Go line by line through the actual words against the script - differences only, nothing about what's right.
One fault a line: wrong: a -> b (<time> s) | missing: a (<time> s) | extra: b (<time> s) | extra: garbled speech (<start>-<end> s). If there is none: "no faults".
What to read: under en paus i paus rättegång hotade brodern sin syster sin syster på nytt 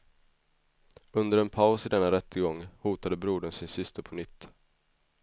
wrong: paus -> denna (1.9 s)
missing: sin syster (4.0 s)